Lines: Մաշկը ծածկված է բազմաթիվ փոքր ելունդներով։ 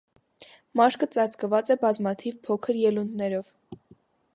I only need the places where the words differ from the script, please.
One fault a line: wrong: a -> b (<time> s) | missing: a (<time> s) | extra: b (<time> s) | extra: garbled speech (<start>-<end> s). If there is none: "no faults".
no faults